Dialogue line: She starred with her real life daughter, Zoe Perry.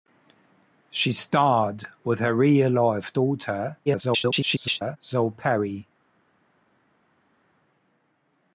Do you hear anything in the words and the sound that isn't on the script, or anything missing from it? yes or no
yes